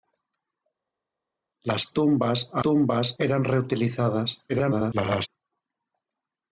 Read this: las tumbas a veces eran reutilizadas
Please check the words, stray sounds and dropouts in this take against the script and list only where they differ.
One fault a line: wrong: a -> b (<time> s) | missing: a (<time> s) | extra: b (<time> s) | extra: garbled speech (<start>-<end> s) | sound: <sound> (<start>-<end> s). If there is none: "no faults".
wrong: veces -> tumbas (2.6 s)
extra: garbled speech (4.5-5.3 s)